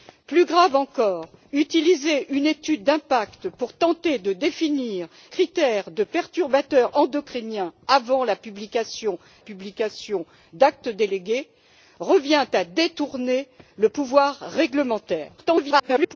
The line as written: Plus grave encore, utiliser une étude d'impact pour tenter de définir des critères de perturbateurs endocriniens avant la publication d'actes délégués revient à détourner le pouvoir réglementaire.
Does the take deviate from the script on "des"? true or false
true